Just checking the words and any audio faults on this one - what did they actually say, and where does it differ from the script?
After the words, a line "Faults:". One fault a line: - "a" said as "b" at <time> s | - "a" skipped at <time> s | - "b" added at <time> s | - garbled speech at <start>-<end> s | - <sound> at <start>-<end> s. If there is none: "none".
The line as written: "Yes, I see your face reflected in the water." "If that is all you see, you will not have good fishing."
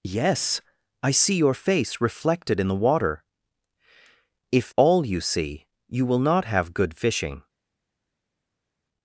"Yes, I see your face reflected in the water." "If all you see, you will not have good fishing."
Faults:
- "that is" skipped at 4.7 s